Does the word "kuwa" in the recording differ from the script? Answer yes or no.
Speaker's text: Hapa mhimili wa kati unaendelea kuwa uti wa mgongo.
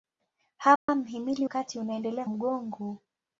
yes